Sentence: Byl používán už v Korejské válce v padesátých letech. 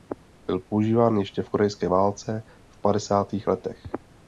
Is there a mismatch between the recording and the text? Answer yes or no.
yes